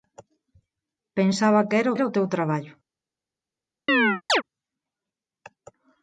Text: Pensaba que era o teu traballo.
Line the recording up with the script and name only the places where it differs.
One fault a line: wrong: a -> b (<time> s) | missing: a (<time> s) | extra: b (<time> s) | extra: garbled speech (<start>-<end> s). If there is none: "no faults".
extra: era (2.0 s)